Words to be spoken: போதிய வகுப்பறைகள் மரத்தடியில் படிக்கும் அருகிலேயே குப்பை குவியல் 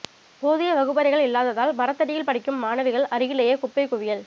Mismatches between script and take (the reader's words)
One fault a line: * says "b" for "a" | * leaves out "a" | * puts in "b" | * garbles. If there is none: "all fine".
* puts in "இல்லாததால்"
* puts in "மாணவிகள்"